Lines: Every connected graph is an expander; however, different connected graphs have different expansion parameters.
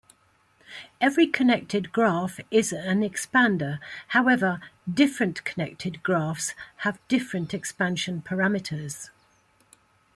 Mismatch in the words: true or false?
false